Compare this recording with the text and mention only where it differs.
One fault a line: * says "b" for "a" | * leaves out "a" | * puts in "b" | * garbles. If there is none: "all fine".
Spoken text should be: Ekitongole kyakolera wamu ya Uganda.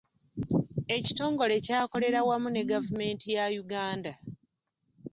* puts in "ne gavumenti"